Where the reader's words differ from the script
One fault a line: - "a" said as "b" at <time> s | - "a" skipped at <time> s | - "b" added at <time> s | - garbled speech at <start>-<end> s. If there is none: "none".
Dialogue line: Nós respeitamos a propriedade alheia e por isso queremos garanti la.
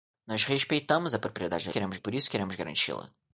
- "alheia" said as "queremos" at 1.7 s